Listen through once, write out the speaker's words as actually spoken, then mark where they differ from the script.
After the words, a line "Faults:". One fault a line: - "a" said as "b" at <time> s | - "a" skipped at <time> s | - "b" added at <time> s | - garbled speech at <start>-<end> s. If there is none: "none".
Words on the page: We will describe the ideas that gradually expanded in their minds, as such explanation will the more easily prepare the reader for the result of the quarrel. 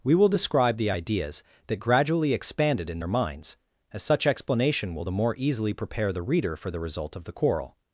We will describe the ideas that gradually expanded in their minds, as such explanation will the more easily prepare the reader for the result of the quarrel.
Faults:
none